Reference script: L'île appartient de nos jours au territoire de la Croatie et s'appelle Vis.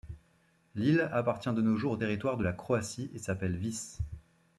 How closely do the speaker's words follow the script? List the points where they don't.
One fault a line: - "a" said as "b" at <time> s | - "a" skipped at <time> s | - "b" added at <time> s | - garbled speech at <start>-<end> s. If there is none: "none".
none